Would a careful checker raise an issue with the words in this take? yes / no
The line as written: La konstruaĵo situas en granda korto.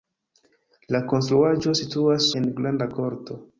no